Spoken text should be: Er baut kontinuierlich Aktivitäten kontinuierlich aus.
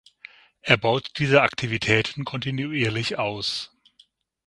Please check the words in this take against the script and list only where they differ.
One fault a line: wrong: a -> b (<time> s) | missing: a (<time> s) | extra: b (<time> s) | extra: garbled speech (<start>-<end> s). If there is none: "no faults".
wrong: kontinuierlich -> diese (1.2 s)